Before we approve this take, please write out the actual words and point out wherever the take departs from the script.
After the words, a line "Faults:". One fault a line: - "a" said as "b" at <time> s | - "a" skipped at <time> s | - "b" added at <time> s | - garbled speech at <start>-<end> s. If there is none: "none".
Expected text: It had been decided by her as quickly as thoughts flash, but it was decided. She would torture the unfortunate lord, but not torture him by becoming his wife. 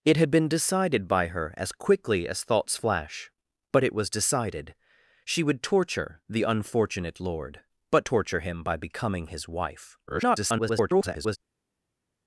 It had been decided by her as quickly as thoughts flash, but it was decided. She would torture the unfortunate lord, but torture him by becoming his wife. [garbled]
Faults:
- "not" skipped at 8.1 s
- garbled speech at 10.1-11.4 s